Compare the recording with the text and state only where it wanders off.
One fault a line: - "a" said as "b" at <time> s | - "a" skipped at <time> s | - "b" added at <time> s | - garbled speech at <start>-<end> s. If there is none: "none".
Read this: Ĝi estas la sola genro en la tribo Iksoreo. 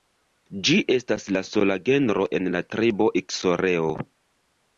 none